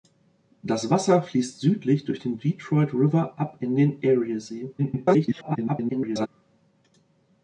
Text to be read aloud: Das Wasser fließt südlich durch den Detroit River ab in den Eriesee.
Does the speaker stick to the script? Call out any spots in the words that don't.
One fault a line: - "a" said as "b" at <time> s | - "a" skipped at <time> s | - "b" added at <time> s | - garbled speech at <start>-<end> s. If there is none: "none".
- garbled speech at 4.8-6.3 s